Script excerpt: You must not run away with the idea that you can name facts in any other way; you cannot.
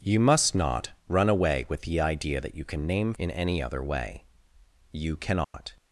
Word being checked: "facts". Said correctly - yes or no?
no